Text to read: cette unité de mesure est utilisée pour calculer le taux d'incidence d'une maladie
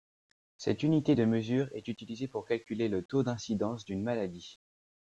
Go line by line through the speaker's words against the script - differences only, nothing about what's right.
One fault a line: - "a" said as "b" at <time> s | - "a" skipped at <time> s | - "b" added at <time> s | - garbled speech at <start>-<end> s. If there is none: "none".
none